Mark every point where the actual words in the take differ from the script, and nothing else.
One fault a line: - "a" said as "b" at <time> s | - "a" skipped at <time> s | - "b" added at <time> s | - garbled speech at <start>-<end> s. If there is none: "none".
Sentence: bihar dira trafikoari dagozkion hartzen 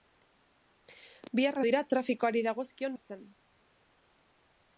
none